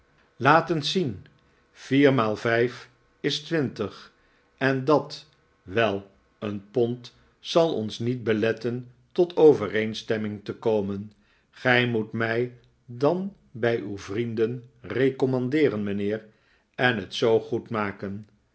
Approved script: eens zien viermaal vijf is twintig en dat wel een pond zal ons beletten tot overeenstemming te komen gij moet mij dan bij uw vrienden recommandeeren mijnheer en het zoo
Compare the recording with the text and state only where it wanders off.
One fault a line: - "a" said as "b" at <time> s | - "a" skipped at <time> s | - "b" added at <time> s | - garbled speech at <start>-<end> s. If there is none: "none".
- "niet" added at 8.0 s